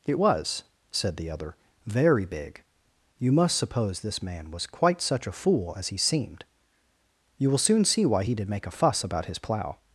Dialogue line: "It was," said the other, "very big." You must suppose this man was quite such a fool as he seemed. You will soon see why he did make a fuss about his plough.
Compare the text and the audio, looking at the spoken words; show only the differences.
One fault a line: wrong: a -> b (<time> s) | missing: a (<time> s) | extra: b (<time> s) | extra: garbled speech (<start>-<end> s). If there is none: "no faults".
no faults